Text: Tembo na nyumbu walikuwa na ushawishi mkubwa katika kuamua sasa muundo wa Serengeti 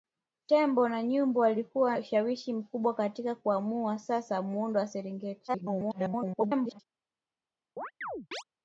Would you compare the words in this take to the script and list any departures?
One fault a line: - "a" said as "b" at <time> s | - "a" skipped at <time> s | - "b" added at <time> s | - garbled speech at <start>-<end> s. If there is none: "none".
- "na" skipped at 2.0 s
- garbled speech at 5.5-6.8 s